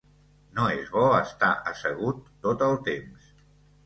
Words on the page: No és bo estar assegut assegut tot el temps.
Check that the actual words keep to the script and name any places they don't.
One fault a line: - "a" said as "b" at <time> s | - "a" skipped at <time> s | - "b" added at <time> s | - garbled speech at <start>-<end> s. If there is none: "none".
- "assegut" skipped at 2.2 s